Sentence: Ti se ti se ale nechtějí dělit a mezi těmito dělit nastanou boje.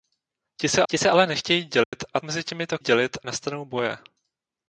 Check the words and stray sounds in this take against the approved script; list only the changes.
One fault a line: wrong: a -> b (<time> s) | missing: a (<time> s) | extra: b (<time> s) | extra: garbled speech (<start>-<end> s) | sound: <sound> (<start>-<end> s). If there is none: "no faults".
sound: dropout (1.8-1.9 s)